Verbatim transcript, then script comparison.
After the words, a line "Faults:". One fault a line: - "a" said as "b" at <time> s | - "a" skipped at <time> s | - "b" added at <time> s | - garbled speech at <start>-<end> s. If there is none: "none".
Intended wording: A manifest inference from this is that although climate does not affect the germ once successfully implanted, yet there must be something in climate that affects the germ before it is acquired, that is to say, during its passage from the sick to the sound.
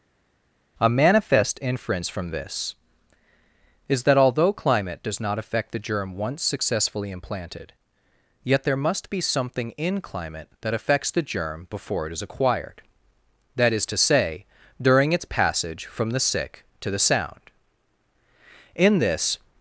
A manifest inference from this is that although climate does not affect the germ once successfully implanted, yet there must be something in climate that affects the germ before it is acquired, that is to say, during its passage from the sick to the sound. In this
Faults:
- "In this" added at 18.7 s